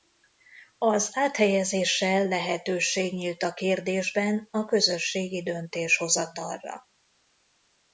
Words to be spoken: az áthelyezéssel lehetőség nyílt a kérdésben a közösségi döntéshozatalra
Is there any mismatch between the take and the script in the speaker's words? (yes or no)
no